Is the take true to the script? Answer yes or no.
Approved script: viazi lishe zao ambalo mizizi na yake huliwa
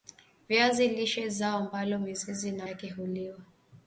yes